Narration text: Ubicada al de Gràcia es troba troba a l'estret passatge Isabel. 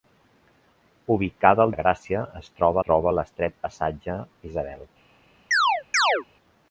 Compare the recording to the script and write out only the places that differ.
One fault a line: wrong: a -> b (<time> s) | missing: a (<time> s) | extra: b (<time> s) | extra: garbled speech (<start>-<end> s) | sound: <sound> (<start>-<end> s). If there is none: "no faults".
sound: chirp (5.5-6.2 s)